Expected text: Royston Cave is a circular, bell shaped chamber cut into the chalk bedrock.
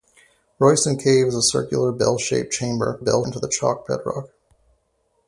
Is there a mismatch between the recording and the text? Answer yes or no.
yes